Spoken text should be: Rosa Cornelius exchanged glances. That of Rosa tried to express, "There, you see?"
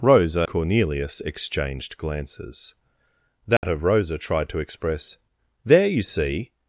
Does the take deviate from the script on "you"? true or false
false